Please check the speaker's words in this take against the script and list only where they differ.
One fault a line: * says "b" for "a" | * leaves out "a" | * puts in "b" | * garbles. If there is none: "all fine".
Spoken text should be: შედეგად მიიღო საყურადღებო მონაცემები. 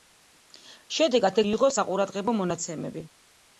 all fine